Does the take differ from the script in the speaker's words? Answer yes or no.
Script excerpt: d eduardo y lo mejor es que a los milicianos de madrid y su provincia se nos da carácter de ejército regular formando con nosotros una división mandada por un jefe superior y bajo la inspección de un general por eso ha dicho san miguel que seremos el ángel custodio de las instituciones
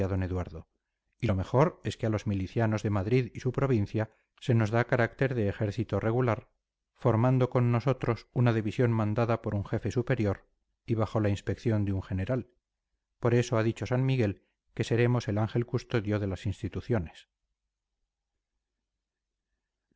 no